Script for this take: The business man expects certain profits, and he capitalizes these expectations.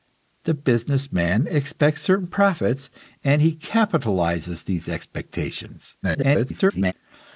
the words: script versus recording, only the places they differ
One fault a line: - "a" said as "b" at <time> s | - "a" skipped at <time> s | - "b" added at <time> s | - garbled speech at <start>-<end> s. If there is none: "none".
- garbled speech at 6.0-6.9 s